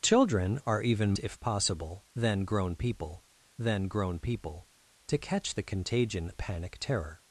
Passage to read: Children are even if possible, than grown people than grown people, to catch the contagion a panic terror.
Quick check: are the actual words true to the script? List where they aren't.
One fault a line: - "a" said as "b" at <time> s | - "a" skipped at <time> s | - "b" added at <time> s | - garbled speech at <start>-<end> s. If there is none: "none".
none